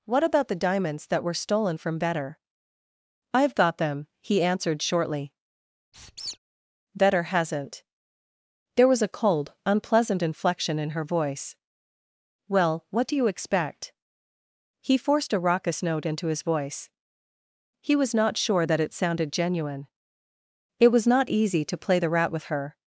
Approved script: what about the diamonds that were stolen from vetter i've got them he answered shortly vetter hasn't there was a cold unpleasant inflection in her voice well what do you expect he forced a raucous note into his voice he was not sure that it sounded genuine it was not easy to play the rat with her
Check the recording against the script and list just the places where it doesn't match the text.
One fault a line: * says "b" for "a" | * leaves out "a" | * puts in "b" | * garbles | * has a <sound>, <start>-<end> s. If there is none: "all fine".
* has a squeak, 5.9-6.4 s